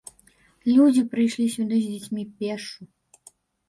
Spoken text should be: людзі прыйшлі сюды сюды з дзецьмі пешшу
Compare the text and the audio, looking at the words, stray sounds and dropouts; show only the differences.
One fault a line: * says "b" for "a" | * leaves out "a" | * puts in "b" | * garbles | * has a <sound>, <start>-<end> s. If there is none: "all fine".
* leaves out "сюды"